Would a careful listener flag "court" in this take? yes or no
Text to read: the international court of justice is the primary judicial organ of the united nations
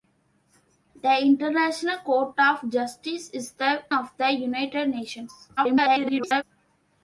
no